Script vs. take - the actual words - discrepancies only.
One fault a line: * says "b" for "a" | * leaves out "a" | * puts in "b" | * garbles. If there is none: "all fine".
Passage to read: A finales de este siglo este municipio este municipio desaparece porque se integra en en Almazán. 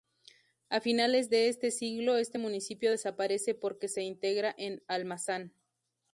* leaves out "este municipio"
* leaves out "en"